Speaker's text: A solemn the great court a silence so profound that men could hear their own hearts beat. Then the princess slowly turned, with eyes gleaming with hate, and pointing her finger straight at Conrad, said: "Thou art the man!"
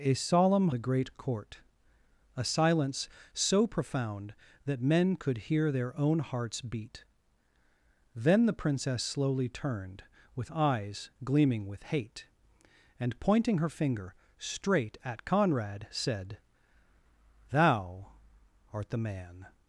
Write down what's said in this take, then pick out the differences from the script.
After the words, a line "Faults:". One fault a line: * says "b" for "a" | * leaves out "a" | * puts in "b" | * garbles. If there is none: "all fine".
A solemn the great court a silence so profound that men could hear their own hearts beat. Then the princess slowly turned, with eyes gleaming with hate, and pointing her finger straight at Conrad, said: "Thou art the man!"
Faults:
all fine